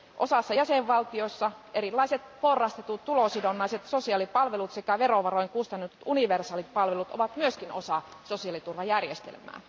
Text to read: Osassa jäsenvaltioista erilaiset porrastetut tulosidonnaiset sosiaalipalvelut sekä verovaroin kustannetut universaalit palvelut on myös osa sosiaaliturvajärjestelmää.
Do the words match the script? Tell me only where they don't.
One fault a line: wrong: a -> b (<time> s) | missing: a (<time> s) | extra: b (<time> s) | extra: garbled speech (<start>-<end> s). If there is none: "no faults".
wrong: on -> ovat (7.1 s)